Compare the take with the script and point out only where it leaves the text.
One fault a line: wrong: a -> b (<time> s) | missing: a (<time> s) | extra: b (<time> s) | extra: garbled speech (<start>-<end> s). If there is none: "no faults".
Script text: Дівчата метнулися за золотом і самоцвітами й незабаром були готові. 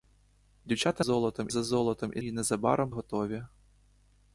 wrong: метнулися -> золотом (1.0 s)
missing: самоцвітами (2.2 s)
missing: були (2.9 s)